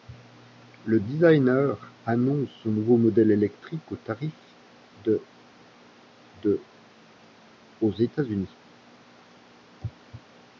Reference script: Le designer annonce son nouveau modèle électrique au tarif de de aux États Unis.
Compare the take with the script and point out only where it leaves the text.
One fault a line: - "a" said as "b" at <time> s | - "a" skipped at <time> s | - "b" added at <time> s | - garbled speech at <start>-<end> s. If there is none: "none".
none